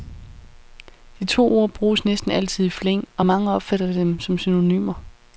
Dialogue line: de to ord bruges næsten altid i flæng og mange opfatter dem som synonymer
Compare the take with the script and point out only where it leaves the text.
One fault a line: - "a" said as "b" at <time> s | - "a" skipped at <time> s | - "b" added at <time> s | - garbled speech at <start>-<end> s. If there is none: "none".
none